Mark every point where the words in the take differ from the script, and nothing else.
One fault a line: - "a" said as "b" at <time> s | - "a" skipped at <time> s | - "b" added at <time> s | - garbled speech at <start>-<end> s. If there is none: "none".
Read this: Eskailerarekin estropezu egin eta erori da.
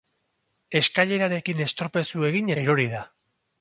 - "eta" skipped at 2.5 s